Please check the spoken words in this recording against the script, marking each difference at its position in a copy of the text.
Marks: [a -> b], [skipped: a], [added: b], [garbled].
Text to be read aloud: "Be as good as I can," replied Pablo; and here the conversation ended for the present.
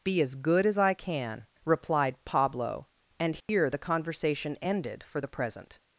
"Be as good as I can," replied Pablo; and here the conversation ended for the present.